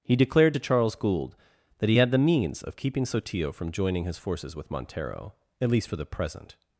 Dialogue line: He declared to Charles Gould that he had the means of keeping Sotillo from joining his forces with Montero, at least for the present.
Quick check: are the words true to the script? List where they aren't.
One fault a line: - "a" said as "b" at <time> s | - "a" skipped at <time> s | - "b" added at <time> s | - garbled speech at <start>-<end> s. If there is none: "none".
none